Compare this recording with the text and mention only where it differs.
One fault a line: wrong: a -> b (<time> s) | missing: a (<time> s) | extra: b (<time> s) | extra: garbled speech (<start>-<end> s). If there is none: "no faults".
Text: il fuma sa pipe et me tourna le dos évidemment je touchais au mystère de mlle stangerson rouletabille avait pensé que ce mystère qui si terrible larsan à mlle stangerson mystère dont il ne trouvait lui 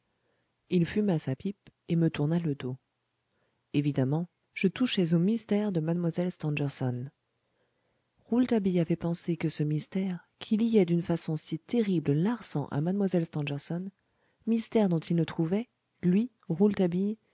extra: liait d'une façon (10.6 s)